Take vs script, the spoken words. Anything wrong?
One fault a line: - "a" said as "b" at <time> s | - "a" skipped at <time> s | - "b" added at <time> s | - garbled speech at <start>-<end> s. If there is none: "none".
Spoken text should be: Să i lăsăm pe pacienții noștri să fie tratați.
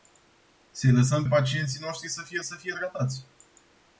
- "pe" skipped at 1.2 s
- "să fie" added at 2.4 s